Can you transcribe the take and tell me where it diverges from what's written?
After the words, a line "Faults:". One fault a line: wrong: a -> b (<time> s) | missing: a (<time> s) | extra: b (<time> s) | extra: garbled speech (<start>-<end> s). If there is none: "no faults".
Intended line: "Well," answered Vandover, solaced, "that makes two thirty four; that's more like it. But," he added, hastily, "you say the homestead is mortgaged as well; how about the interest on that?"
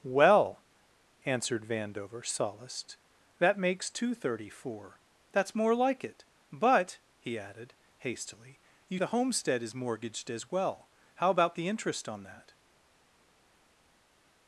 "Well," answered Vandover, solaced, "that makes two thirty four; that's more like it. But," he added, hastily, "you the homestead is mortgaged as well; how about the interest on that?"
Faults:
missing: say (9.0 s)